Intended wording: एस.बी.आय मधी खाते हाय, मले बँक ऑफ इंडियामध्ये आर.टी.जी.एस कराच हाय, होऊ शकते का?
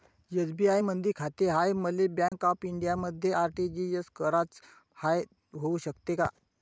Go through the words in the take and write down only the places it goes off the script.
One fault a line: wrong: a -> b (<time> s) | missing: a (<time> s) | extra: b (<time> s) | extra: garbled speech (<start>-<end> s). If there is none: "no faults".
no faults